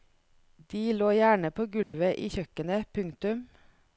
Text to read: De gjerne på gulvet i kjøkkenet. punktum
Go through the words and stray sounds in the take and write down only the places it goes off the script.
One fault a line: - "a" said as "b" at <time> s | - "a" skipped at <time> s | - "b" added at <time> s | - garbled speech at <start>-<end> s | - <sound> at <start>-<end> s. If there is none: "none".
- "lå" added at 0.9 s
- dropout at 1.8-1.9 s